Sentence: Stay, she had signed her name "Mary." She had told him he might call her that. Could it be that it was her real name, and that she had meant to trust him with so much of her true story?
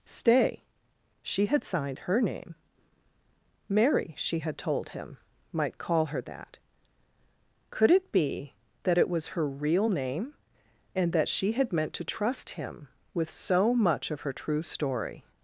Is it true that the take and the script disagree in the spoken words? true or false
true